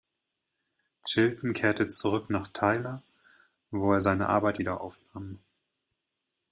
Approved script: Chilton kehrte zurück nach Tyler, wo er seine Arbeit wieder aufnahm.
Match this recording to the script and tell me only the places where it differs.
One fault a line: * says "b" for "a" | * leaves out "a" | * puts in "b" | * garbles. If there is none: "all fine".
all fine